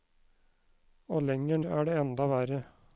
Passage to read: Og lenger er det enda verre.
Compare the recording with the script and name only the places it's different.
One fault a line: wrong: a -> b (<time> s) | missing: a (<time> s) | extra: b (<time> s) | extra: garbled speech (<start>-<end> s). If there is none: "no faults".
no faults